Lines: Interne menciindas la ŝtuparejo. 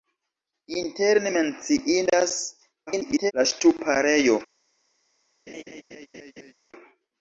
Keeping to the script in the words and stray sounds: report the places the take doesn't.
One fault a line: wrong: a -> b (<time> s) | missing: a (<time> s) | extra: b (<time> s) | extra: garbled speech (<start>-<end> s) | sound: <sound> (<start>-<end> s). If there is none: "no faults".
extra: garbled speech (2.9-3.3 s)
sound: laugh (5.5-6.5 s)